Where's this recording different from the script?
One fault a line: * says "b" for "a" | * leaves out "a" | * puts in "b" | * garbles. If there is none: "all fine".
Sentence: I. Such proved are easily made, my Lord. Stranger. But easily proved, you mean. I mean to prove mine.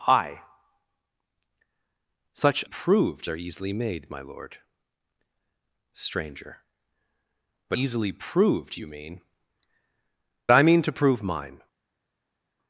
all fine